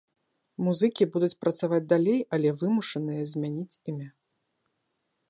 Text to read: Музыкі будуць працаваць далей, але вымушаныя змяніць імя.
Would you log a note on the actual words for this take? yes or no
no